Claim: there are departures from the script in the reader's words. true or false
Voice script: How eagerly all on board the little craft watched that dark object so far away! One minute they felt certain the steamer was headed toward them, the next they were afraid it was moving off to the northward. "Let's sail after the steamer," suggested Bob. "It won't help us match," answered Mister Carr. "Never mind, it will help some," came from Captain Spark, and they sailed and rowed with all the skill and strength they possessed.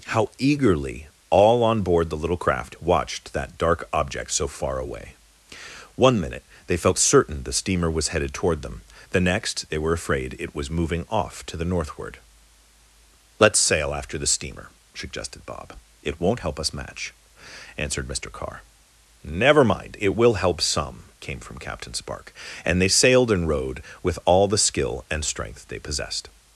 false